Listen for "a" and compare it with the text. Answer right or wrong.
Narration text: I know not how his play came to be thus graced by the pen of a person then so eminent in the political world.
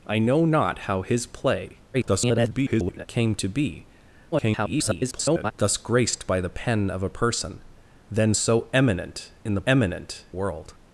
right